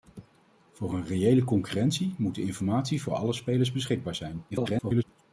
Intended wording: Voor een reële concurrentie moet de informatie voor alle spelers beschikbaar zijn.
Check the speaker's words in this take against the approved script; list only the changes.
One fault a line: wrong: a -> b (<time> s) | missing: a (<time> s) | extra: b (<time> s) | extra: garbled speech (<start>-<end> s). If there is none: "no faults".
extra: garbled speech (4.5-5.0 s)